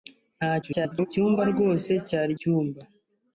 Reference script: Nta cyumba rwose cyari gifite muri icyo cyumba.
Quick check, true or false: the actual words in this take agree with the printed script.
false